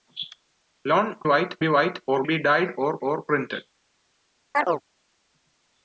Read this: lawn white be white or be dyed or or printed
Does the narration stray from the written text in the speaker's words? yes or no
no